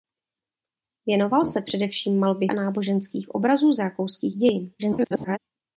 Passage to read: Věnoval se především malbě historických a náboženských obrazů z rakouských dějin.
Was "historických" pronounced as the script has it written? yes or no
no